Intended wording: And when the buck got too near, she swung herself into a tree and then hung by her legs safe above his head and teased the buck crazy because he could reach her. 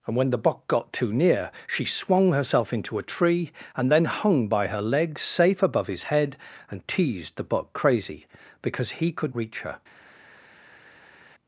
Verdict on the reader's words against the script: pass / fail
pass